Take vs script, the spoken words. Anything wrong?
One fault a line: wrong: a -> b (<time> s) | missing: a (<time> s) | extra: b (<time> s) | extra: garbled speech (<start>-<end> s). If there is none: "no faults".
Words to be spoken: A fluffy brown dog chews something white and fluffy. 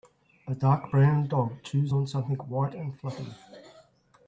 wrong: fluffy -> dark (0.6 s)
extra: on (1.9 s)